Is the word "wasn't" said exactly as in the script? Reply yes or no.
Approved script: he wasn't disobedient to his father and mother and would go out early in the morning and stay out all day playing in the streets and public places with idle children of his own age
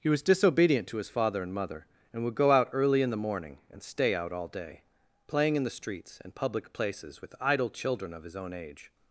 no